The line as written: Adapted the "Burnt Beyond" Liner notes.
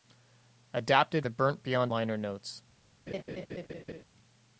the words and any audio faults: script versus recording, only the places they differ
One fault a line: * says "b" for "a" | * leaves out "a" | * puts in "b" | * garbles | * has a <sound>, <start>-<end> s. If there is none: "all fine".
* has a laugh, 3.1-4.0 s